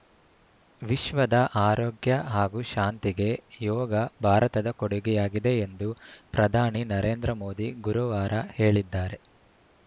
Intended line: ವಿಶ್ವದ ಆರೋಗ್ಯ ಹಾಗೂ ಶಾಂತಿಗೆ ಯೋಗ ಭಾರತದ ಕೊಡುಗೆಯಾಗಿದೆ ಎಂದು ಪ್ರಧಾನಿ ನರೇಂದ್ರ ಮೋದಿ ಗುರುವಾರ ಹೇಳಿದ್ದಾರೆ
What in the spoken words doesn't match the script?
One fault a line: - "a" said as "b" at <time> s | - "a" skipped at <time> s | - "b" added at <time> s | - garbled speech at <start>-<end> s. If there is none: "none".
none